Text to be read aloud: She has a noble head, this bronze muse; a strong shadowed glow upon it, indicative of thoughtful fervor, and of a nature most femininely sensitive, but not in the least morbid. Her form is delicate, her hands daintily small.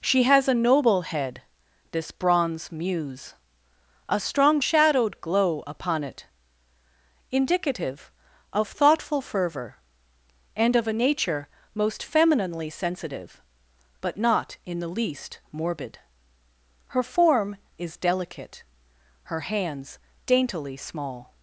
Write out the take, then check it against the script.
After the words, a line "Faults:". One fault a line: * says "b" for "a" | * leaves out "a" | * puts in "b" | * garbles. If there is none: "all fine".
She has a noble head, this bronze muse; a strong shadowed glow upon it, indicative of thoughtful fervor, and of a nature most femininely sensitive, but not in the least morbid. Her form is delicate, her hands daintily small.
Faults:
all fine